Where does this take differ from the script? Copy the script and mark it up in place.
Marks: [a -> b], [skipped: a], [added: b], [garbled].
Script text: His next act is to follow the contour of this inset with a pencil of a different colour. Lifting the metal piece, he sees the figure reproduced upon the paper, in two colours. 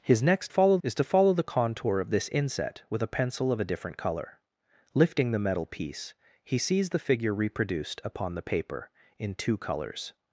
His next [act -> follow] is to follow the contour of this inset with a pencil of a different colour. Lifting the metal piece, he sees the figure reproduced upon the paper, in two colours.